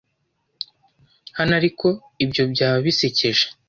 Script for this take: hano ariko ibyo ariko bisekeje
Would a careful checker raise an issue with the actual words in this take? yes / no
yes